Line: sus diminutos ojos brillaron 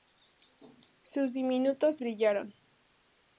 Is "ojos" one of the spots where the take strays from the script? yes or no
yes